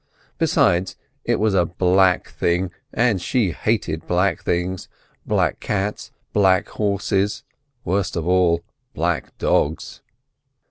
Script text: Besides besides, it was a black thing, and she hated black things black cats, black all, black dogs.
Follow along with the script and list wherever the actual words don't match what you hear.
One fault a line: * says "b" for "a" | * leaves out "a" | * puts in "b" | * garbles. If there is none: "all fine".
* leaves out "besides"
* puts in "horses worst of"